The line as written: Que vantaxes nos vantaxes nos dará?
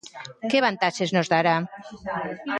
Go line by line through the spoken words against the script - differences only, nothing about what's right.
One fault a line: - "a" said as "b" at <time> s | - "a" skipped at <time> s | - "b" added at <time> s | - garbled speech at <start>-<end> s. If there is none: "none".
- "vantaxes nos" skipped at 1.3 s